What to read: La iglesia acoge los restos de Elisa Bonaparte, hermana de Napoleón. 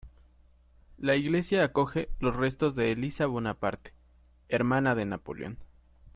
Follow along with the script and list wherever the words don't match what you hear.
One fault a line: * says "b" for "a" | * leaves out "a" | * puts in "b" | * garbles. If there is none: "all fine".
all fine